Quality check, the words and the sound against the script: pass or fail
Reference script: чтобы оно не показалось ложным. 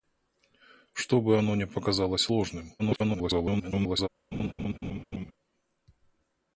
fail